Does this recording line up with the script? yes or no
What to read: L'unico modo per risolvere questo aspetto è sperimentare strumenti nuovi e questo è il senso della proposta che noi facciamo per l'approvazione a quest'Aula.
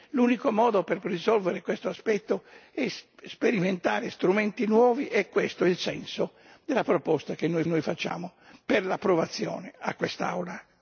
no